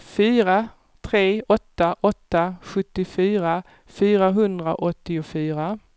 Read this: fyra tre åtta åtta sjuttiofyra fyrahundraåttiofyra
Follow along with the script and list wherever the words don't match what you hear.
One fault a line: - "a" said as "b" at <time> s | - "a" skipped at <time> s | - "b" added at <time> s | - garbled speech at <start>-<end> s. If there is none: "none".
none